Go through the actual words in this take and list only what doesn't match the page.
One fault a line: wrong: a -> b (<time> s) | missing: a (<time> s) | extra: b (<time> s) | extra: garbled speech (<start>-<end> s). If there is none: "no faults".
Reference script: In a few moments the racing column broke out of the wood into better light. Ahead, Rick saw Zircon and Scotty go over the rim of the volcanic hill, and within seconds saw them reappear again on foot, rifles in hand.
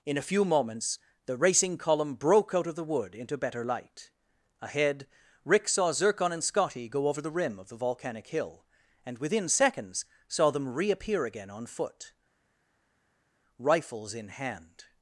no faults